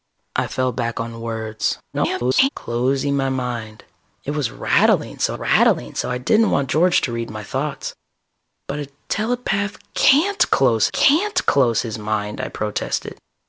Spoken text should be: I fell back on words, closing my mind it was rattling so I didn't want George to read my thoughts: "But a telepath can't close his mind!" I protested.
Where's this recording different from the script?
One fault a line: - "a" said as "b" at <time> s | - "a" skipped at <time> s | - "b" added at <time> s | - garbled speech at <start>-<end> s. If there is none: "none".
- garbled speech at 1.9-2.5 s
- "rattling so" added at 5.3 s
- "can't close" added at 10.9 s